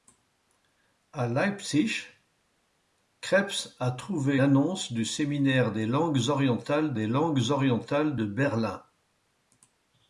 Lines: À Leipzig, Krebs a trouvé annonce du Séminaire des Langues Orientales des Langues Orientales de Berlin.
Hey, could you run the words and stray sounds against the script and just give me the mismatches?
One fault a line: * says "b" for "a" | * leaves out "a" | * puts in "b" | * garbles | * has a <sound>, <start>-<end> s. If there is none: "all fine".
all fine